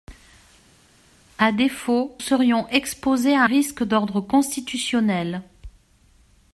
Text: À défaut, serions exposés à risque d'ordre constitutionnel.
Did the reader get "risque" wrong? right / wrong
right